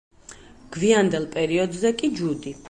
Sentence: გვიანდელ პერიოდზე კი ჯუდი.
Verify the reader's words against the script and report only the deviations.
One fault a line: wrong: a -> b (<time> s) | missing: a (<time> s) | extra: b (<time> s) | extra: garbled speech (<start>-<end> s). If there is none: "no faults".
no faults